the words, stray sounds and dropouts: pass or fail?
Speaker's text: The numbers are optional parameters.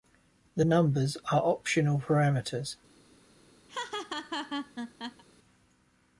fail